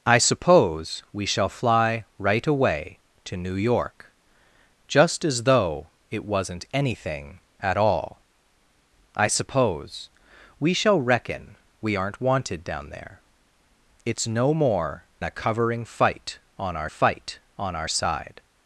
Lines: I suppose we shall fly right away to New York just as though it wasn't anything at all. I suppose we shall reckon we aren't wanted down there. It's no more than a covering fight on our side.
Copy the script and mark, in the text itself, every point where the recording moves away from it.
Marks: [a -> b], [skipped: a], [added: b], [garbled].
I suppose we shall fly right away to New York just as though it wasn't anything at all. I suppose we shall reckon we aren't wanted down there. It's no more [skipped: than] a covering fight on our [added: fight on our] side.